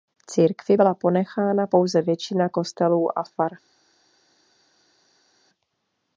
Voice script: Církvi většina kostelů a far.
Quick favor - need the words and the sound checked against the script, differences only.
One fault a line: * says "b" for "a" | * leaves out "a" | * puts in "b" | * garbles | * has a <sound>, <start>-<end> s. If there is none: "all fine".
* puts in "byla ponechána pouze"